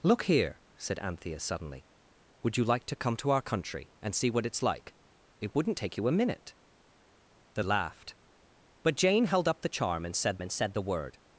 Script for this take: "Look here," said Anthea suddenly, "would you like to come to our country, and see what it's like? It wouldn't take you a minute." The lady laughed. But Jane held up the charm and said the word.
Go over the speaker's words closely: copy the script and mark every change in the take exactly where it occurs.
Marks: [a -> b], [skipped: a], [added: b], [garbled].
"Look here," said Anthea suddenly, "would you like to come to our country, and see what it's like? It wouldn't take you a minute." The [skipped: lady] laughed. But Jane held up the charm and said [added: and said] the word.